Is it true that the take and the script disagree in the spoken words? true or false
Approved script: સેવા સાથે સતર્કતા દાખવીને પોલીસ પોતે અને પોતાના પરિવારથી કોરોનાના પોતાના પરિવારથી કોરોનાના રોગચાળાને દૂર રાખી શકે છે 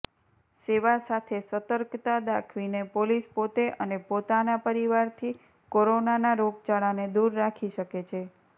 true